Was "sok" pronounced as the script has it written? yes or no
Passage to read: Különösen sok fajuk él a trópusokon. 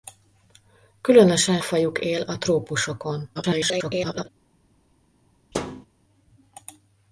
no